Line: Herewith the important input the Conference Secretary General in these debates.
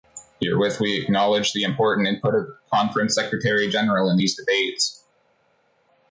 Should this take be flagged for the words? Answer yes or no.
yes